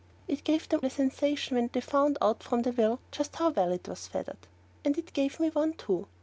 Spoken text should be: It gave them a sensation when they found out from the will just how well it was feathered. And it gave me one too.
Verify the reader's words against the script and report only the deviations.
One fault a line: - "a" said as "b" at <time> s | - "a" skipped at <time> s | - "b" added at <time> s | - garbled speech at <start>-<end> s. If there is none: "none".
none